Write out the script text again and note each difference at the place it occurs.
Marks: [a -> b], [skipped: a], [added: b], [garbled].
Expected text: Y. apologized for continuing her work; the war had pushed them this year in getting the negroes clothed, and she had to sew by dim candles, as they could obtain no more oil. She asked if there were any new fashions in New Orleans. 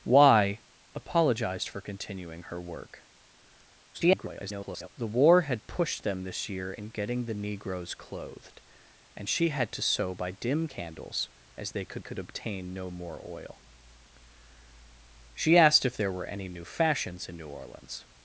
Y. apologized for continuing her work; [garbled] the war had pushed them this year in getting the negroes clothed, and she had to sew by dim candles, as they could [added: could] obtain no more oil. She asked if there were any new fashions in New Orleans.